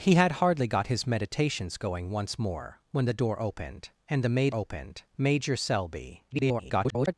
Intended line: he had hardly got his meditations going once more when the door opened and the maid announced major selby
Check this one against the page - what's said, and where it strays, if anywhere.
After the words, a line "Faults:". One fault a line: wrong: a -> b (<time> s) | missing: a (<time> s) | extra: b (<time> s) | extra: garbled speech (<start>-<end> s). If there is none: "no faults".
he had hardly got his meditations going once more when the door opened and the maid opened major selby [garbled]
Faults:
wrong: announced -> opened (4.5 s)
extra: garbled speech (6.3-7.1 s)